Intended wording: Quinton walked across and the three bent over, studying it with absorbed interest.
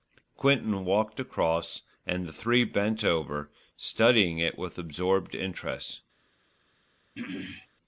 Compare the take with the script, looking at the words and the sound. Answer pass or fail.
fail